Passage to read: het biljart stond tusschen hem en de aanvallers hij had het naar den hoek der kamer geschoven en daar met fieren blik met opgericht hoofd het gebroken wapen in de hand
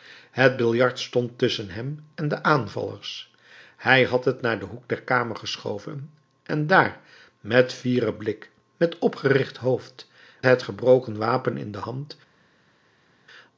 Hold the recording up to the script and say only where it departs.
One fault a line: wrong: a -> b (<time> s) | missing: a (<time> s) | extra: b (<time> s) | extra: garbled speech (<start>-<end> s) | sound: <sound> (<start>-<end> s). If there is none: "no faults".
no faults